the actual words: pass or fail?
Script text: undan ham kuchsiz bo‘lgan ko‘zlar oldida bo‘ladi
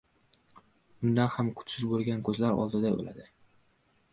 pass